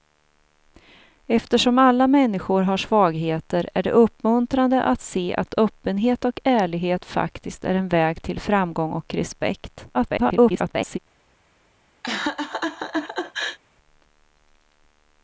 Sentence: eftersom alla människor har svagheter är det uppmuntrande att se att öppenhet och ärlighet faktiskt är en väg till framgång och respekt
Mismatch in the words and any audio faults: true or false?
true